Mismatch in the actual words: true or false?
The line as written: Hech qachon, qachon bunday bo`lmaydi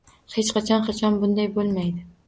false